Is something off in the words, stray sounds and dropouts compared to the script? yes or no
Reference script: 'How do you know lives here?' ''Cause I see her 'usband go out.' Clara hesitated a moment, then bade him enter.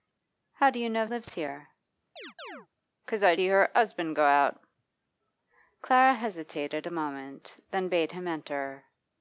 yes